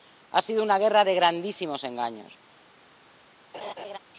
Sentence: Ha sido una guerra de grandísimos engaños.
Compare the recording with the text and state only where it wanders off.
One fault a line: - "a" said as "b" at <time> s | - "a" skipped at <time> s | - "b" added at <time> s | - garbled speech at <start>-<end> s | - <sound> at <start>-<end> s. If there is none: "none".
- laugh at 3.5-4.0 s